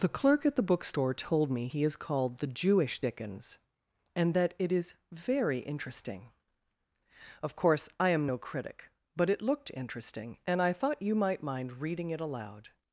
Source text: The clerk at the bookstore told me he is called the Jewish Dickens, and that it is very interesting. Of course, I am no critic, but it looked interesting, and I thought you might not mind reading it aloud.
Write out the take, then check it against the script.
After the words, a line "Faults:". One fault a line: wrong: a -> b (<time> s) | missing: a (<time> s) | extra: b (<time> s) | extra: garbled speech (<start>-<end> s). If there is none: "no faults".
The clerk at the bookstore told me he is called the Jewish Dickens, and that it is very interesting. Of course, I am no critic, but it looked interesting, and I thought you might mind reading it aloud.
Faults:
missing: not (11.4 s)